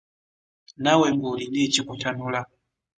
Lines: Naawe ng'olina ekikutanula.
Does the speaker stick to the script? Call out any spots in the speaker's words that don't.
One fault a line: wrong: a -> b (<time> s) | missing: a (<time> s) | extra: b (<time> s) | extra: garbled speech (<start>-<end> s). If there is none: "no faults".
no faults